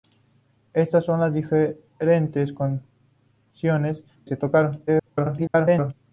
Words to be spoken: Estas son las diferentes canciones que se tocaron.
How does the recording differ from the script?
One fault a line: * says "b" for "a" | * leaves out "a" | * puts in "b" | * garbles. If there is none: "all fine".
* leaves out "que"
* garbles